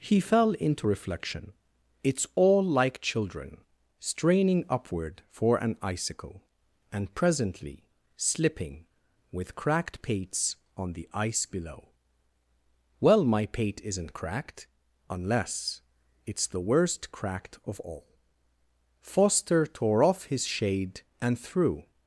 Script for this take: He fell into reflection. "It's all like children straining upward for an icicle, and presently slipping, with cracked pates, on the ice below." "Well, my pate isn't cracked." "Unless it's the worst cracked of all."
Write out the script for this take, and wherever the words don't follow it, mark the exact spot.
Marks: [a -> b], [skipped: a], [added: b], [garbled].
He fell into reflection. "It's all like children straining upward for an icicle, and presently slipping, with cracked pates, on the ice below." "Well, my pate isn't cracked." "Unless it's the worst cracked of all." [added: Foster tore off his shade and threw]